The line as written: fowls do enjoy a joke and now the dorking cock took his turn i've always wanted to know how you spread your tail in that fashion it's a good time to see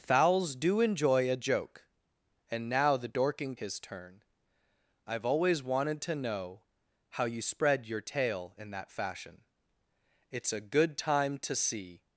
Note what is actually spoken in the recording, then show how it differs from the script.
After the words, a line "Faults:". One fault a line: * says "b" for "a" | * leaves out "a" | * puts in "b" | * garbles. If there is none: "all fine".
fowls do enjoy a joke and now the dorking his turn i've always wanted to know how you spread your tail in that fashion it's a good time to see
Faults:
* leaves out "cock took"